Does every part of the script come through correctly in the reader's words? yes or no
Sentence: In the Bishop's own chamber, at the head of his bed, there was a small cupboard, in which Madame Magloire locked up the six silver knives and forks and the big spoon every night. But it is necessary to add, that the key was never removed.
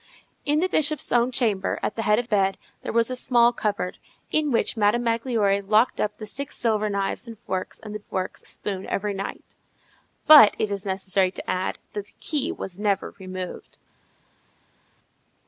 no